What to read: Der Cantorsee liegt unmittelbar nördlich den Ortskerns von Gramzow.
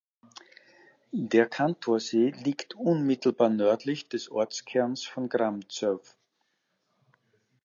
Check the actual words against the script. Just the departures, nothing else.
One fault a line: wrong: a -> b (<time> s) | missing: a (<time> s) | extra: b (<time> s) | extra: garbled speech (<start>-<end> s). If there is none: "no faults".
wrong: den -> des (4.1 s)